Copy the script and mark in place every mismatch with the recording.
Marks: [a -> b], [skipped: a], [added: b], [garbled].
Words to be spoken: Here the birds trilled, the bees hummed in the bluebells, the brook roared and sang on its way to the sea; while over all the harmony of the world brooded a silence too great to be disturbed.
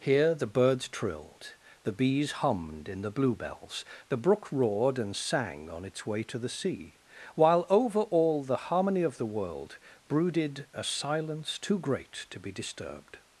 Here the birds trilled, the bees hummed in the bluebells, the brook roared and sang on its way to the sea; while over all the harmony of the world brooded a silence too great to be disturbed.